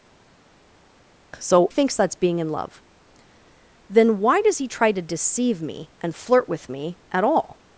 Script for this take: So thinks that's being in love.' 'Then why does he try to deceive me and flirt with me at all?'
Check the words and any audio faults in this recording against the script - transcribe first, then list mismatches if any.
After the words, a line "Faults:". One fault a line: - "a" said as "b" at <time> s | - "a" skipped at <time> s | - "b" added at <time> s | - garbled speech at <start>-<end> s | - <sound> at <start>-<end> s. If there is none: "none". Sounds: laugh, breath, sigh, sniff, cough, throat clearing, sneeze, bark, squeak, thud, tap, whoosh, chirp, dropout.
So thinks that's being in love.' 'Then why does he try to deceive me and flirt with me at all?'
Faults:
none